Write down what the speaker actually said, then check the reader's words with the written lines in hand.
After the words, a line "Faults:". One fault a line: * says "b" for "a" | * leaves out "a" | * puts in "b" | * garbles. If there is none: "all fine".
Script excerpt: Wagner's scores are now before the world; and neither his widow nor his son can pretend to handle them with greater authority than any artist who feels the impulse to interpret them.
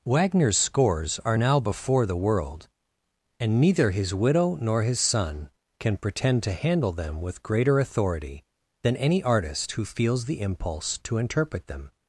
Wagner's scores are now before the world; and neither his widow nor his son can pretend to handle them with greater authority than any artist who feels the impulse to interpret them.
Faults:
all fine